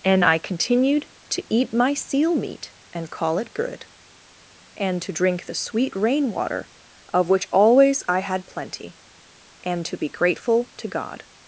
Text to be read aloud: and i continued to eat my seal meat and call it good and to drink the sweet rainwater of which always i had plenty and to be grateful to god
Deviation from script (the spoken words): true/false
false